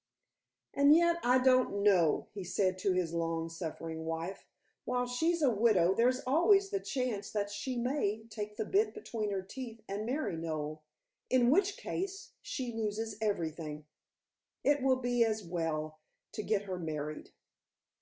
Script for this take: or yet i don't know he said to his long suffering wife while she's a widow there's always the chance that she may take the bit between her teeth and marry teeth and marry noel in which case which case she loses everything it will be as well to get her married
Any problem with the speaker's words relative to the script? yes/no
yes